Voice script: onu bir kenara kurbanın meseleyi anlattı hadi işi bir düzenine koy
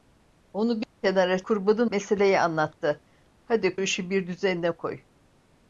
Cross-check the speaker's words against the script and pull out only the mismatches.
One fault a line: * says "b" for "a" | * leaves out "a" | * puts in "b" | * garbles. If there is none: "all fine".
all fine